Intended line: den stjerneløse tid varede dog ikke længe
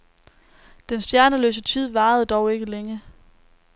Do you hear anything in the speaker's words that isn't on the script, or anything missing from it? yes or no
no